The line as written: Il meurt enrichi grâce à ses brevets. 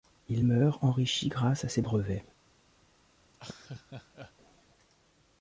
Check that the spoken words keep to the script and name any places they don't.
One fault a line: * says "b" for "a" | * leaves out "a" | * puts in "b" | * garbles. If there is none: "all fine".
all fine